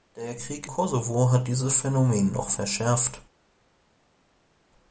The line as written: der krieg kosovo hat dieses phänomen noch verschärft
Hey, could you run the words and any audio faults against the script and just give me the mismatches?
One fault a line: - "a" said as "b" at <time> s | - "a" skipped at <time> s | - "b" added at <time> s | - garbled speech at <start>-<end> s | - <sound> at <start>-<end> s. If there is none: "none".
none